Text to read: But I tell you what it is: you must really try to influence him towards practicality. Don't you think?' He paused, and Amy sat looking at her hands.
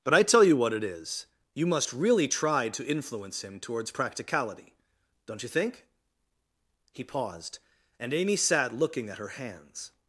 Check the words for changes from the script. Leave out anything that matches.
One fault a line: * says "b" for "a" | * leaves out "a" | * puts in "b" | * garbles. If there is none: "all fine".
all fine